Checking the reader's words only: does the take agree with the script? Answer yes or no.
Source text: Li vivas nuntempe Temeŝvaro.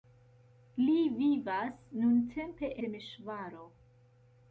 yes